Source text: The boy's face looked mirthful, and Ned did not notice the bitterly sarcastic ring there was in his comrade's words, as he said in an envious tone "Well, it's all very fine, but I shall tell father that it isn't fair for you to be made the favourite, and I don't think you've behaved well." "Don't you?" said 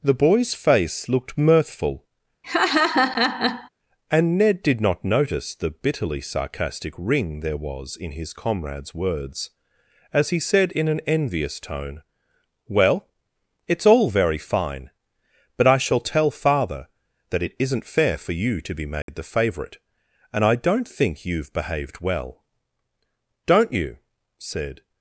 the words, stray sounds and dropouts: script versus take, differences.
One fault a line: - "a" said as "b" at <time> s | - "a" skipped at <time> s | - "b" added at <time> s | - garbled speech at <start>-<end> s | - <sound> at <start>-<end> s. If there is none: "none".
- laugh at 2.4-3.7 s
- dropout at 19.0-19.1 s